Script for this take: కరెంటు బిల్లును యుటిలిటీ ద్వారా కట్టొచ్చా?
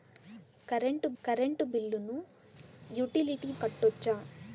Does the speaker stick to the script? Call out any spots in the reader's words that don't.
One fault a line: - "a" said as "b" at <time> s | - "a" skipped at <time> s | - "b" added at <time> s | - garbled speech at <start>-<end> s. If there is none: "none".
- "కరెంటు" added at 1.2 s
- "ద్వారా" skipped at 3.5 s